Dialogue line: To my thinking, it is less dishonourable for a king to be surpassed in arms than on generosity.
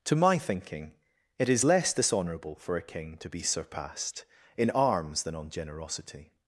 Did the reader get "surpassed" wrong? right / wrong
right